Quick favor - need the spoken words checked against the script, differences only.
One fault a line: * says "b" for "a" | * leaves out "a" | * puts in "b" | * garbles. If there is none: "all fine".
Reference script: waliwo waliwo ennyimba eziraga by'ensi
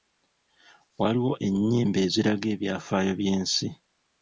* leaves out "waliwo"
* puts in "ebyafaayo"